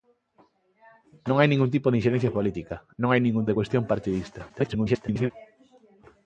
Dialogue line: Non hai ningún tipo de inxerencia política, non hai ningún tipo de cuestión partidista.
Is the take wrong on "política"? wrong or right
right